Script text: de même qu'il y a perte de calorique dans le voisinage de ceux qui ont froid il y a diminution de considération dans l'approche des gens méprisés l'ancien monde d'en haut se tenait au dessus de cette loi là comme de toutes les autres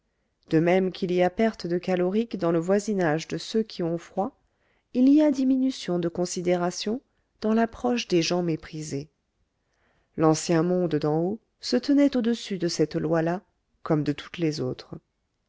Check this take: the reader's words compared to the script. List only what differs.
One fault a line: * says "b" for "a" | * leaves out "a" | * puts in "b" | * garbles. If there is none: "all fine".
all fine